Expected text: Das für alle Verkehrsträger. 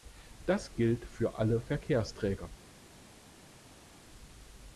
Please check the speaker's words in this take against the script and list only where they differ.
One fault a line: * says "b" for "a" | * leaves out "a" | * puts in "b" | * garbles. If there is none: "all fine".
* puts in "gilt"